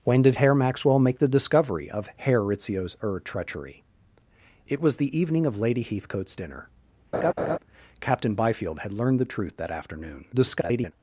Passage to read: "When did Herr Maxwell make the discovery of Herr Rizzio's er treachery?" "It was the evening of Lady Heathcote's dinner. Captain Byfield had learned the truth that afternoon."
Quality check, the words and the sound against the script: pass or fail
fail